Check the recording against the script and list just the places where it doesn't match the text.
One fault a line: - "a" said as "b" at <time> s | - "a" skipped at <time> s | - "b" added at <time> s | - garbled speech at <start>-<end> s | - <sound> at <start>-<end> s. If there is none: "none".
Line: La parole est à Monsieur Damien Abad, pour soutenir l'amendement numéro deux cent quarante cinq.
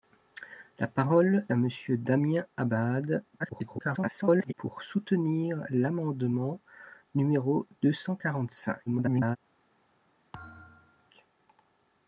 - "est" skipped at 1.4 s
- garbled speech at 3.4-4.5 s
- garbled speech at 8.9-9.4 s
- thud at 10.3-11.1 s